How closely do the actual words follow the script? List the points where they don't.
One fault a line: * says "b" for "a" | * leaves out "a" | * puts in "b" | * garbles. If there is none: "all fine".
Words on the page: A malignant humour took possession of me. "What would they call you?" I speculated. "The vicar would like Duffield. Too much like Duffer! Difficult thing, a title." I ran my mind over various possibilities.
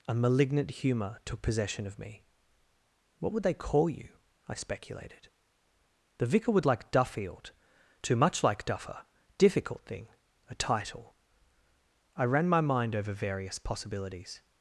all fine